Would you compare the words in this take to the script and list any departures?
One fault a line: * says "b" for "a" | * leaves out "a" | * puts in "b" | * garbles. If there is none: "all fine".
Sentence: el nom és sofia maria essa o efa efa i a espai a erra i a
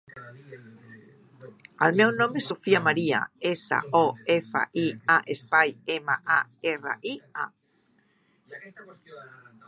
* puts in "meu"
* leaves out "efa"
* puts in "ema"